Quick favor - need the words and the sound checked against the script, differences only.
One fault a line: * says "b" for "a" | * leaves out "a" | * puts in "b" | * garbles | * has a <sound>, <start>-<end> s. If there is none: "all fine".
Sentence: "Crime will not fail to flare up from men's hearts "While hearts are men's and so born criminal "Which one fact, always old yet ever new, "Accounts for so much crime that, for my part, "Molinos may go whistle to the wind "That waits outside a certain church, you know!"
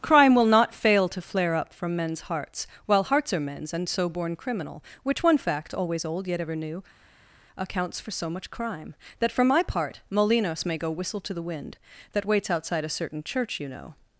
all fine